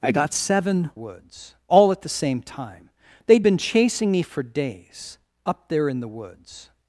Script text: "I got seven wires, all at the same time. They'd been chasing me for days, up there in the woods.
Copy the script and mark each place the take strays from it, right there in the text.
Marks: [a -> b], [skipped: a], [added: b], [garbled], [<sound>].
"I got seven [wires, -> woods] all at the same time. They'd been chasing me for days, up there in the woods.